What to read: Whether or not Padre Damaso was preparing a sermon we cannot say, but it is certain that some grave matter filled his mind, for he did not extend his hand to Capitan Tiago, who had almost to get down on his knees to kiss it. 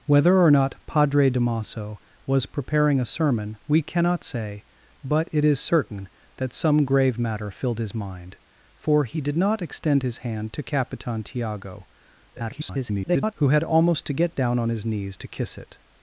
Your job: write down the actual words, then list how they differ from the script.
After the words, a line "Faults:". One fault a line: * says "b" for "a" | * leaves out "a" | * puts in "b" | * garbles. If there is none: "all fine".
Whether or not Padre Damaso was preparing a sermon we cannot say, but it is certain that some grave matter filled his mind, for he did not extend his hand to Capitan Tiago, [garbled] who had almost to get down on his knees to kiss it.
Faults:
* garbles